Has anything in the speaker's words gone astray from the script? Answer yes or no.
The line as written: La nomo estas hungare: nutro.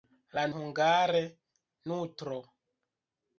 yes